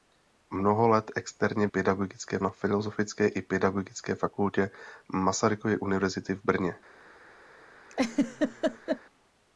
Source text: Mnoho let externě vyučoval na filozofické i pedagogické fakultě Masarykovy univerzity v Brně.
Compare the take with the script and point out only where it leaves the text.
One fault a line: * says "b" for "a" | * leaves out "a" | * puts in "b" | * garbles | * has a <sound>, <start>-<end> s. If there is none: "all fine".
* says "pedagogické" for "vyučoval"
* has a laugh, 7.9-9.0 s